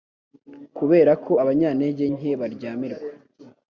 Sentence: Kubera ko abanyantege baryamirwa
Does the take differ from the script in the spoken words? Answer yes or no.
yes